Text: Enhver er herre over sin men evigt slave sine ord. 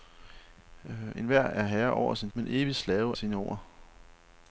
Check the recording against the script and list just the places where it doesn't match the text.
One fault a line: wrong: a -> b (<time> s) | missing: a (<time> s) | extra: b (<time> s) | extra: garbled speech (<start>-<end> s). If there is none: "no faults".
no faults